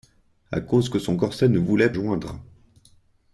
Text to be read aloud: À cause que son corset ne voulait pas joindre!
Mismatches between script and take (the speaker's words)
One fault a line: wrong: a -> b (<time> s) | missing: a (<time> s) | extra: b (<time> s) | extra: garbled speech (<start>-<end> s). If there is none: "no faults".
missing: pas (1.9 s)